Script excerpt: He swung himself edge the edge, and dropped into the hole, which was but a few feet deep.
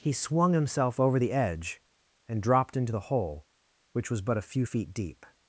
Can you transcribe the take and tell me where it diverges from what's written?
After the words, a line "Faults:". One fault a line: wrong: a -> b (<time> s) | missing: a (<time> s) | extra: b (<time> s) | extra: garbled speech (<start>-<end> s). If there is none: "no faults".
He swung himself over the edge, and dropped into the hole, which was but a few feet deep.
Faults:
wrong: edge -> over (1.0 s)